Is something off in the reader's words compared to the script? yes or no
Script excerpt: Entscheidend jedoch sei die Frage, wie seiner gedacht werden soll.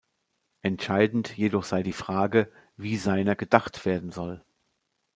no